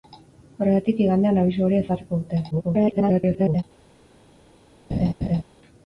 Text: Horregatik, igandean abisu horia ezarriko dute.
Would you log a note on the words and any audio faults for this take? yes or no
yes